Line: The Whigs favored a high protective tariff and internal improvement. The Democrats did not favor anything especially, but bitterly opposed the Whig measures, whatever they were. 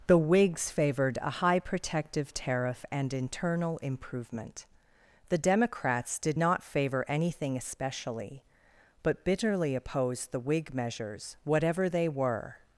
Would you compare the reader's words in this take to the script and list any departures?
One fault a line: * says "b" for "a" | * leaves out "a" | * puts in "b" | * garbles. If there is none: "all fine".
all fine